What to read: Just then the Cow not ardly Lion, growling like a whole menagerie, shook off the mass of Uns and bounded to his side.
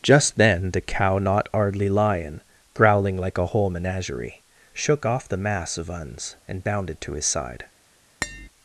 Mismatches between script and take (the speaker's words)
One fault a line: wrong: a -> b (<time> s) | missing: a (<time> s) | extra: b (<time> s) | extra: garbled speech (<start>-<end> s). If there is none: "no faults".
no faults